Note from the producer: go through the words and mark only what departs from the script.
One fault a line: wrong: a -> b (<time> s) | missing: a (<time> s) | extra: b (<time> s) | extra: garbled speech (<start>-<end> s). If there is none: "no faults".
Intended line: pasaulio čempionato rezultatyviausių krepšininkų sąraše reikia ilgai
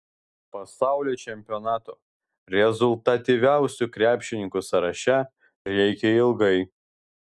no faults